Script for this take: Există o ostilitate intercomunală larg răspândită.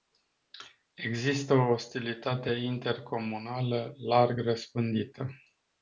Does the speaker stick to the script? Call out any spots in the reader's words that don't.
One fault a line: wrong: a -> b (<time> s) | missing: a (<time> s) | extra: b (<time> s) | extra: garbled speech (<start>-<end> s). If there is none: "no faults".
no faults